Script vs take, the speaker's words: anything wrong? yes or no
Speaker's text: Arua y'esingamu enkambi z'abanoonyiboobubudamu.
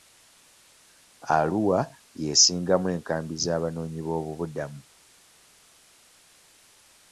no